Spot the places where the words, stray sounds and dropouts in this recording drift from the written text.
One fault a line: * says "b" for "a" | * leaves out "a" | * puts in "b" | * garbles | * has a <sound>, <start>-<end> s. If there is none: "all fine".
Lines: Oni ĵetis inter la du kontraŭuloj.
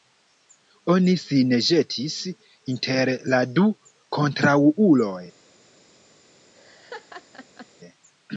* puts in "sin"
* has a laugh, 6.5-7.7 s